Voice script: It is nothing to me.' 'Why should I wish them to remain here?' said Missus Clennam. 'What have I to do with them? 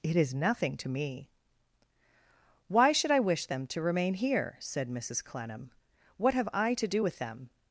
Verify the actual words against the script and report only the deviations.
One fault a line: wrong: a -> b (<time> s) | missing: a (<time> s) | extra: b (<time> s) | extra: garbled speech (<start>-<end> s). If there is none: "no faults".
no faults